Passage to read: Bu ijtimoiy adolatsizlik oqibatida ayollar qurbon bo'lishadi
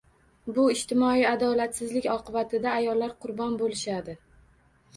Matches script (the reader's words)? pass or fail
pass